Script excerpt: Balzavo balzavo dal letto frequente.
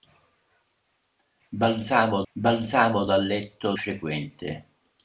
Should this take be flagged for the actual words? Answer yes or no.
no